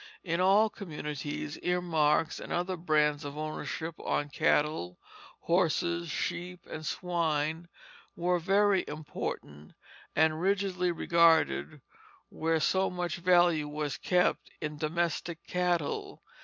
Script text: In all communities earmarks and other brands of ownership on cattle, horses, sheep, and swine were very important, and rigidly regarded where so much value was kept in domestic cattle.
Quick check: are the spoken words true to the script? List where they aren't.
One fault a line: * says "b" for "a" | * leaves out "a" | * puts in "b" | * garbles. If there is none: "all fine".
all fine